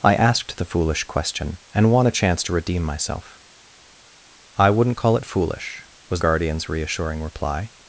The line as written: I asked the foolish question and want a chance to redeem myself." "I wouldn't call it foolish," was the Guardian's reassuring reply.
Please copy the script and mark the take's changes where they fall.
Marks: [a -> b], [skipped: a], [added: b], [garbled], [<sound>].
I asked the foolish question and want a chance to redeem myself." "I wouldn't call it foolish," was [skipped: the] Guardian's reassuring reply.